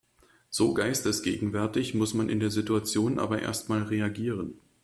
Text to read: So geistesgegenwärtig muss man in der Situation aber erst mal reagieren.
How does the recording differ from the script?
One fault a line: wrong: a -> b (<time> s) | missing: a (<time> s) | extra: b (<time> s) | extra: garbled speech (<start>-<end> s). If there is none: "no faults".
no faults